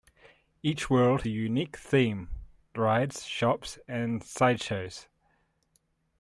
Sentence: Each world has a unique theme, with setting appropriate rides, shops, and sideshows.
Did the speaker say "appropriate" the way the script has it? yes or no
no